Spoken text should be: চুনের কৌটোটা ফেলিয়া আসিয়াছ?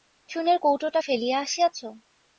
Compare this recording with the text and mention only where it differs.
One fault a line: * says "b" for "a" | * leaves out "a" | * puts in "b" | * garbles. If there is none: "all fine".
all fine